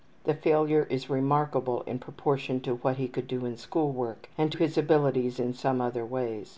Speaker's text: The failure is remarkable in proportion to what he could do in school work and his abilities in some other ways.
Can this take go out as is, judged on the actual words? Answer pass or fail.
pass